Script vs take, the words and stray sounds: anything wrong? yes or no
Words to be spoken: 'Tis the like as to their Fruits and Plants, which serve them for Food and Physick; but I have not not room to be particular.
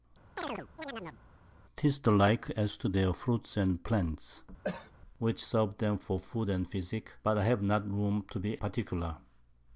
yes